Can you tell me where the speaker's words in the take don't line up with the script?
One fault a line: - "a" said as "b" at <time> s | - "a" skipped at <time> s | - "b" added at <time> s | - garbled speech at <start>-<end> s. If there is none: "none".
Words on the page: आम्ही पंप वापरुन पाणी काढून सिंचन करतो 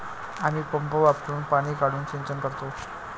none